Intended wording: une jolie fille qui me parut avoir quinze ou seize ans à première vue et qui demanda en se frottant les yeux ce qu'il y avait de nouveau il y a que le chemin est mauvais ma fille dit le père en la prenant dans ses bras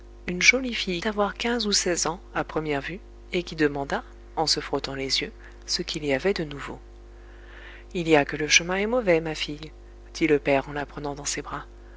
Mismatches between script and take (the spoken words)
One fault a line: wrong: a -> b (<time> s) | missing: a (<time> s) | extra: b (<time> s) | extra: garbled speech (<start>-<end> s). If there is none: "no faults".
missing: qui me parut (1.0 s)